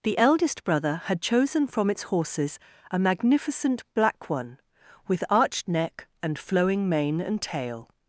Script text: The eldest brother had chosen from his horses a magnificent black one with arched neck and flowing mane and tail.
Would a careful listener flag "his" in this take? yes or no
yes